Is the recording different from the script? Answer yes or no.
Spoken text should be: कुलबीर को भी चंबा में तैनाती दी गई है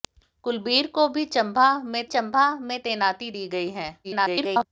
yes